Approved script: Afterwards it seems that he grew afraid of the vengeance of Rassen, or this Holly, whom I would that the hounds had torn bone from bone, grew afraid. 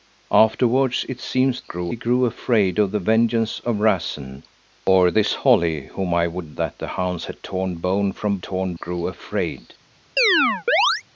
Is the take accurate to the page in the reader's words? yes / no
no